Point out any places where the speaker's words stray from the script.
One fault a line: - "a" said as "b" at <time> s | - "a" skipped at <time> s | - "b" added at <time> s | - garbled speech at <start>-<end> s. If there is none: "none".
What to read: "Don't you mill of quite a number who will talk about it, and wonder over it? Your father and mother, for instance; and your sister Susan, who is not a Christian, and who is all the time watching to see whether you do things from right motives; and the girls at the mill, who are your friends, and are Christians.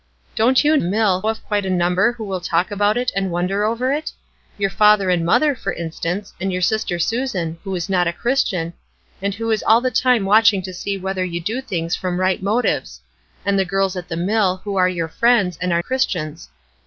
none